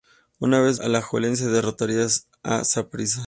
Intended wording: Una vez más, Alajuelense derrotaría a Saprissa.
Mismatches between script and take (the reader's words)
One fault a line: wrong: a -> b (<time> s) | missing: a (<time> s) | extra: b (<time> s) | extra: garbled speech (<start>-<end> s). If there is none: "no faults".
missing: más (0.8 s)